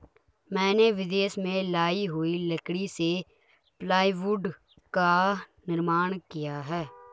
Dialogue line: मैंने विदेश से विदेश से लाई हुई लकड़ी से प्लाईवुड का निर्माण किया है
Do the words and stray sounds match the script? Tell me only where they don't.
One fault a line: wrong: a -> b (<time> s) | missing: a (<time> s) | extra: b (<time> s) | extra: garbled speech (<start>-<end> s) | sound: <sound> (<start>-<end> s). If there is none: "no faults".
missing: विदेश से (1.6 s)